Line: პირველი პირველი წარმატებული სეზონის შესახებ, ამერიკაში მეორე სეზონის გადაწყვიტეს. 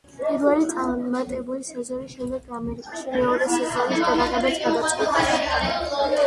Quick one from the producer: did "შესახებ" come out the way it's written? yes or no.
no